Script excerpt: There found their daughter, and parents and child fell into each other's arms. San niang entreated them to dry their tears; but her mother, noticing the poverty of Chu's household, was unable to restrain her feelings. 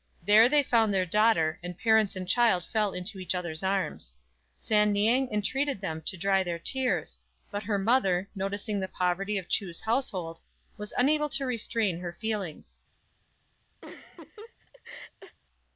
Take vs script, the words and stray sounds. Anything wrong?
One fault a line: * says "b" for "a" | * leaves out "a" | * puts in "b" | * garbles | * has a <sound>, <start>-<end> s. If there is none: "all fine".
* puts in "they"
* has a laugh, 13.8-15.4 s